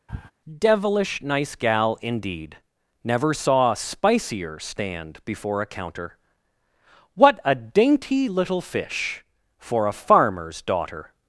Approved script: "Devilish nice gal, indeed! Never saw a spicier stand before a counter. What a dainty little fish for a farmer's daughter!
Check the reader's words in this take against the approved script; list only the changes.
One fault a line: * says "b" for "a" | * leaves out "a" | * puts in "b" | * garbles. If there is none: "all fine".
all fine